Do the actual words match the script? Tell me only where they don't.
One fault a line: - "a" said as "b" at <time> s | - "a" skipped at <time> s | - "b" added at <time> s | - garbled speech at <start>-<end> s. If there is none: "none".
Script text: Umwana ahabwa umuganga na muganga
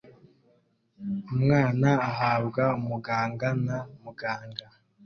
none